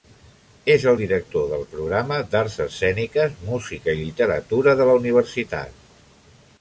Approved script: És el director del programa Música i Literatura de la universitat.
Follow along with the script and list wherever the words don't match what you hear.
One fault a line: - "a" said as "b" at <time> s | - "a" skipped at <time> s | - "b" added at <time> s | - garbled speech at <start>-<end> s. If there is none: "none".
- "d'Arts Escèniques" added at 2.3 s